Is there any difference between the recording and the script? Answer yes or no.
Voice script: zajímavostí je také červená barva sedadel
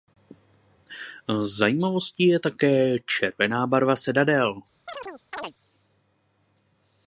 no